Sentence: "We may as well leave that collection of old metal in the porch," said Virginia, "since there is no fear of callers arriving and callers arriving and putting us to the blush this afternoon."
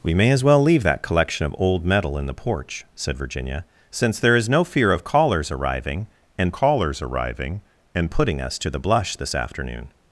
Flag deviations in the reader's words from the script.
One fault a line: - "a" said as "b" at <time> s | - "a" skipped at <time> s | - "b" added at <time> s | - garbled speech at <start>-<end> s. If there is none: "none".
none